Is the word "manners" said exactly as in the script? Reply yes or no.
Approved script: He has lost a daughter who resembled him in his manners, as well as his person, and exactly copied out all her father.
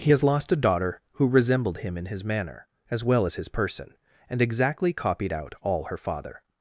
no